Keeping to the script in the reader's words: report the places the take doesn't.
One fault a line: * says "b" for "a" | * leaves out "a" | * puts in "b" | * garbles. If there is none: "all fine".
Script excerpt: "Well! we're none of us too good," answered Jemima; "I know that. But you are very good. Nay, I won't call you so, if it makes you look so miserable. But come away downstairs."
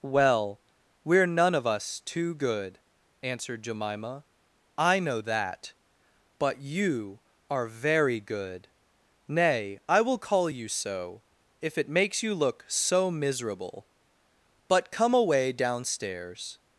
* says "will" for "won't"